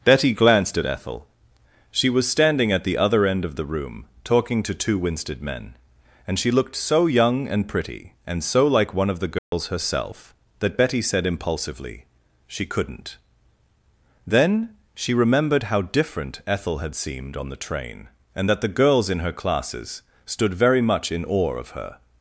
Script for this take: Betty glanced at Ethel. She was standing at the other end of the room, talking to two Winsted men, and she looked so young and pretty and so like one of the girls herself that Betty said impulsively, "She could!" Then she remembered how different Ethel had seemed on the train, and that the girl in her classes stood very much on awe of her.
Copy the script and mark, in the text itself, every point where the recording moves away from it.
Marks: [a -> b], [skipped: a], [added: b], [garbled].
Betty glanced at Ethel. She was standing at the other end of the room, talking to two Winsted men, and she looked so young and pretty and so like one of the girls herself that Betty said impulsively, "She [could!" -> couldn't] Then she remembered how different Ethel had seemed on the train, and that the [girl -> girls] in her classes stood very much [on -> in] awe of her.